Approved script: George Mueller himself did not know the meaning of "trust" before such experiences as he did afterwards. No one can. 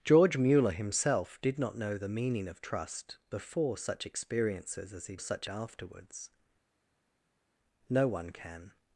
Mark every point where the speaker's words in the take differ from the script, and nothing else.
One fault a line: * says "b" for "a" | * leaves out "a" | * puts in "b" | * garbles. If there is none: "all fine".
* says "such" for "did"